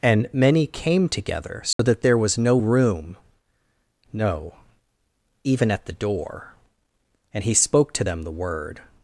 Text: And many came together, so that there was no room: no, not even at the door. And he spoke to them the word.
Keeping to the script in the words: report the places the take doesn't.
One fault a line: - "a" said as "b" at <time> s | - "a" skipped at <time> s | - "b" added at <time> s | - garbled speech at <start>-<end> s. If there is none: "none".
- "not" skipped at 4.6 s